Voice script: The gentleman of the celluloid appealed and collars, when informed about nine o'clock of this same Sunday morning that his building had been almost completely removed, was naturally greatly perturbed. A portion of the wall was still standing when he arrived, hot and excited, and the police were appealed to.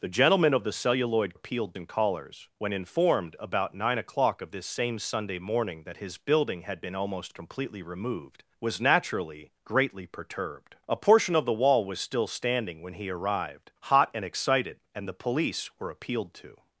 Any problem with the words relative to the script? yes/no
no